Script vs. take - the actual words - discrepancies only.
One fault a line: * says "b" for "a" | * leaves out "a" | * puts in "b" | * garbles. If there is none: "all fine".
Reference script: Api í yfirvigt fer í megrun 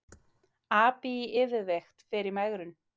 all fine